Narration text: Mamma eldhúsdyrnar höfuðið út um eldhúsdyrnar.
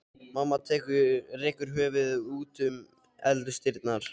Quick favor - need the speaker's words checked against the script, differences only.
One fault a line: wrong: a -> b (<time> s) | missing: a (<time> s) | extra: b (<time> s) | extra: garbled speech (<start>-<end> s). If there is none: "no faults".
wrong: eldhúsdyrnar -> rekur (1.4 s)